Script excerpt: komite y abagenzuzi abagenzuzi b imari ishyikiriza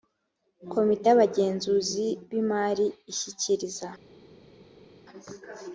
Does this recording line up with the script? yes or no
no